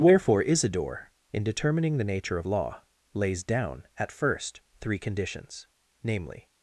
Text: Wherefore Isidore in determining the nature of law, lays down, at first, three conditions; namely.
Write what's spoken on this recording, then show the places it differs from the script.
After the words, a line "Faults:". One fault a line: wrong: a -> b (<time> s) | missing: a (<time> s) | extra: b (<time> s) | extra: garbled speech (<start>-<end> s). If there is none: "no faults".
Wherefore Isidore in determining the nature of law, lays down, at first, three conditions; namely.
Faults:
no faults